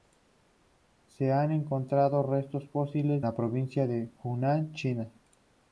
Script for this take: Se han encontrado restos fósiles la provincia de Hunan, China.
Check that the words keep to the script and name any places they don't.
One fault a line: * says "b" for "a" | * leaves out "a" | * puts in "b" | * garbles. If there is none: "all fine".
all fine